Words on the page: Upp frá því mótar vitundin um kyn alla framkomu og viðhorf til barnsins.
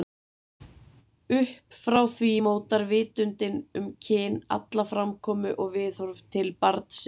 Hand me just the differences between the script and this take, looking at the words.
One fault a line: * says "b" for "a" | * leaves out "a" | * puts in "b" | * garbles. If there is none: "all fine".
all fine